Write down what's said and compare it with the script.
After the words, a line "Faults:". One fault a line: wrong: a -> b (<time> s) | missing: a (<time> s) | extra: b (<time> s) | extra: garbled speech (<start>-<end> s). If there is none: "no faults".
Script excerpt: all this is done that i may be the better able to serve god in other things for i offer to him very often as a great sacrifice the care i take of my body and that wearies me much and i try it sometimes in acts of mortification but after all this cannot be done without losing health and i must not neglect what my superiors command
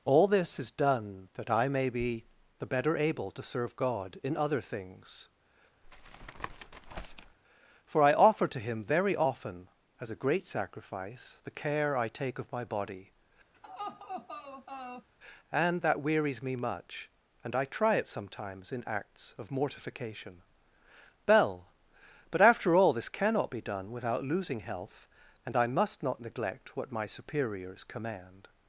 all this is done that i may be the better able to serve god in other things for i offer to him very often as a great sacrifice the care i take of my body and that wearies me much and i try it sometimes in acts of mortification bell but after all this cannot be done without losing health and i must not neglect what my superiors command
Faults:
extra: bell (21.2 s)